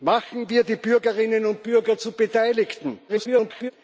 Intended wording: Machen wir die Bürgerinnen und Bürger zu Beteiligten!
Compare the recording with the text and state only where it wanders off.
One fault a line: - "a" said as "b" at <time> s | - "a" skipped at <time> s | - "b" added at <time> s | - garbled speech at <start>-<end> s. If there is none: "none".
- garbled speech at 3.1-3.7 s